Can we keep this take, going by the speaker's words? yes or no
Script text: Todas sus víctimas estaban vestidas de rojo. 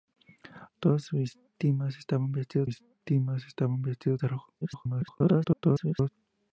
no